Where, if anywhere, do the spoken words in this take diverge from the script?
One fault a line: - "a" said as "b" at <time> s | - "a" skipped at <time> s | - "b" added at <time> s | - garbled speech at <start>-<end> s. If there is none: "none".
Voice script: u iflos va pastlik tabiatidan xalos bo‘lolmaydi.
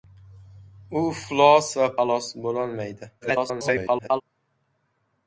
- "pastlik tabiatidan" skipped at 1.9 s
- garbled speech at 3.2-4.2 s